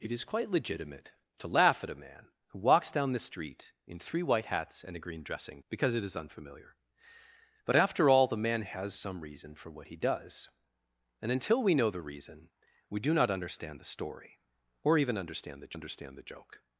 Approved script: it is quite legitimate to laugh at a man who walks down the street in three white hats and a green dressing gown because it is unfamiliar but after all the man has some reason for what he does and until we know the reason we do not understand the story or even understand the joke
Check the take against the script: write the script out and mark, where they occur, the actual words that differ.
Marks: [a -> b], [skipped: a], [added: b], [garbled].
it is quite legitimate to laugh at a man who walks down the street in three white hats and a green dressing [skipped: gown] because it is unfamiliar but after all the man has some reason for what he does and until we know the reason we do not understand the story or even understand the [added: understand the] joke